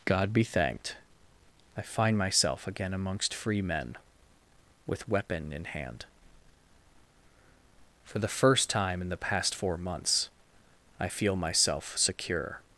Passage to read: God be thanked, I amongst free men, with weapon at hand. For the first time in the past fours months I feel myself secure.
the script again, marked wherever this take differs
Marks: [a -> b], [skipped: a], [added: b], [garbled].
God be thanked, I [added: find myself again] amongst free men, with weapon [at -> in] hand. For the first time in the past [fours -> four] months I feel myself secure.